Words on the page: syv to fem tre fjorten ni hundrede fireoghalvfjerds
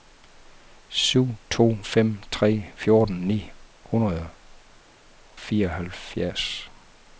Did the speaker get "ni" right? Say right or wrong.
right